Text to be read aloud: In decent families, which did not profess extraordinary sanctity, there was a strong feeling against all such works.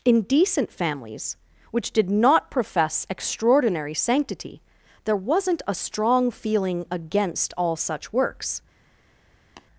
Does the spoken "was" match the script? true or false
false